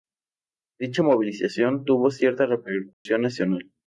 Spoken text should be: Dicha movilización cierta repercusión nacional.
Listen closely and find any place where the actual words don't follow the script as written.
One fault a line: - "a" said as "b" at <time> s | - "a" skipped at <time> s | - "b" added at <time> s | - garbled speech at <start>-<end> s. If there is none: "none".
- "tuvo" added at 1.8 s